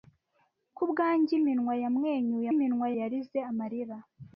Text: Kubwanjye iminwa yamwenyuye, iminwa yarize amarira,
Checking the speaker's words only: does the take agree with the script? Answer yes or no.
yes